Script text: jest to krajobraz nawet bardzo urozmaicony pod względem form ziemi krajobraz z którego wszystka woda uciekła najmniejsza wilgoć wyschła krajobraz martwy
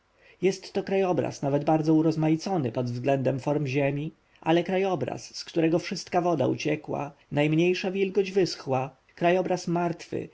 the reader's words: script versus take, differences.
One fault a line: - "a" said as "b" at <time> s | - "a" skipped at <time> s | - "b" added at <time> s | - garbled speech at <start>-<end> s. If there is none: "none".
- "ale" added at 4.4 s